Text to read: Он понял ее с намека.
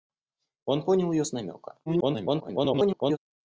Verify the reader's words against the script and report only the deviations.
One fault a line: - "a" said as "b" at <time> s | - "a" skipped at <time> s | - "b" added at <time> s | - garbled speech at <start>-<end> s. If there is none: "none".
- garbled speech at 1.9-3.2 s